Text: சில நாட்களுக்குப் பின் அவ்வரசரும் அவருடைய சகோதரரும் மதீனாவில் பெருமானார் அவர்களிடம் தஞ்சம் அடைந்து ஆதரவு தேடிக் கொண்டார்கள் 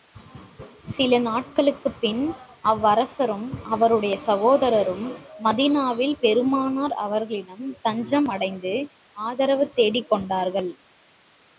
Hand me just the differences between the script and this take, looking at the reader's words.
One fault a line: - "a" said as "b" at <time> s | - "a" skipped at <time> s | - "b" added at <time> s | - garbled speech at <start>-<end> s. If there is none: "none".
none